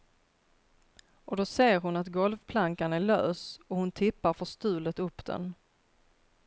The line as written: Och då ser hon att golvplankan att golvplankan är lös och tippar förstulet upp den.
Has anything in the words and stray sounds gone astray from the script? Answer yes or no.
yes